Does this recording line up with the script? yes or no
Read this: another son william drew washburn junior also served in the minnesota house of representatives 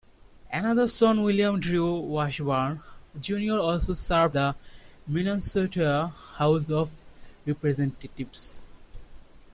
no